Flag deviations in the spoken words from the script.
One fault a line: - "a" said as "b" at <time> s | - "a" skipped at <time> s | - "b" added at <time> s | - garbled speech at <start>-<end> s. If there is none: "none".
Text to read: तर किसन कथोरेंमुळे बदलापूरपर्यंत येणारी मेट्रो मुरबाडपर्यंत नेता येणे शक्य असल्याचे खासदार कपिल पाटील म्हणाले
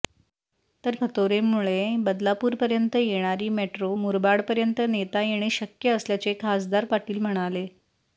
- "किसन" skipped at 0.9 s
- "कपिल" skipped at 6.8 s